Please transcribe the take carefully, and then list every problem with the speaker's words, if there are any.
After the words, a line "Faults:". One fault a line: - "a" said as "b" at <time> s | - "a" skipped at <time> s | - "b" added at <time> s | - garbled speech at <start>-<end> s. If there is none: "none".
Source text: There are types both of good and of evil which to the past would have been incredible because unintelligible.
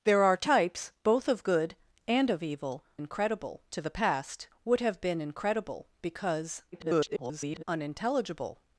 There are types both of good and of evil incredible to the past would have been incredible because [garbled] unintelligible.
Faults:
- "which" said as "incredible" at 3.0 s
- garbled speech at 6.7-7.6 s